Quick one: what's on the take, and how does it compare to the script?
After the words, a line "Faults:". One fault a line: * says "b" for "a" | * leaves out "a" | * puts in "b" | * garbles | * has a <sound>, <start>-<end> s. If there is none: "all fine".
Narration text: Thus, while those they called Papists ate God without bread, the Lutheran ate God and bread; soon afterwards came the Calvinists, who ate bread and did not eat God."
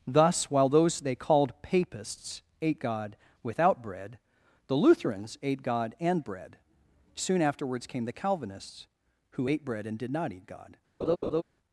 Thus, while those they called Papists ate God without bread, the Lutherans ate God and bread; soon afterwards came the Calvinists, who ate bread and did not eat God."
Faults:
* says "Lutherans" for "Lutheran"
* has a laugh, 11.0-11.4 s